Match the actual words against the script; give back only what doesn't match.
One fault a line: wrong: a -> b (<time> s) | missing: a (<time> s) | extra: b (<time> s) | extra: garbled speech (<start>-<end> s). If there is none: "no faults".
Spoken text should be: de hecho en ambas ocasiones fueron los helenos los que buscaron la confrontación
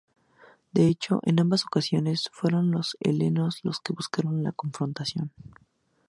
no faults